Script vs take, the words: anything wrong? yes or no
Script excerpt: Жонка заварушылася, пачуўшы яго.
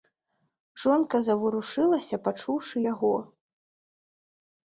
no